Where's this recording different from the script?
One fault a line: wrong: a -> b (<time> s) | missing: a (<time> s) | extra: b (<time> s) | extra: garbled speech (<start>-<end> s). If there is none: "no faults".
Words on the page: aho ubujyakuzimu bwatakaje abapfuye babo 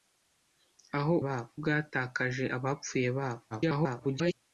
wrong: ubujyakuzimu -> babo (1.2 s)
extra: garbled speech (3.5-4.3 s)